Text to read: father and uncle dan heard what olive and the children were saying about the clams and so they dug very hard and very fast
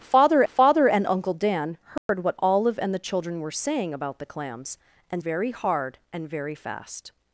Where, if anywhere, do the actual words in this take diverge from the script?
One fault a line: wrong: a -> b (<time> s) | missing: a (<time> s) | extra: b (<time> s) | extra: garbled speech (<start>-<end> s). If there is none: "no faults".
extra: father (0.5 s)
missing: so they dug (5.2 s)